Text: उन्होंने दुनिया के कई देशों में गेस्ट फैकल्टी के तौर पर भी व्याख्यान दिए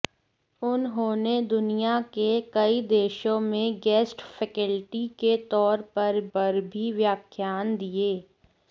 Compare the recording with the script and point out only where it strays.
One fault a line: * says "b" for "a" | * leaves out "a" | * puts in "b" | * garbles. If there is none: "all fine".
* puts in "पर"